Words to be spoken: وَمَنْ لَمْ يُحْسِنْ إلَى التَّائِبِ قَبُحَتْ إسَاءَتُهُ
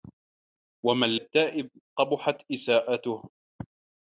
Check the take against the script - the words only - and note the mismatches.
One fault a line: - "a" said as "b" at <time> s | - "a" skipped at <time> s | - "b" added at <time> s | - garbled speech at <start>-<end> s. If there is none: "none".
- "لَمْ يُحْسِنْ إلَى" skipped at 1.2 s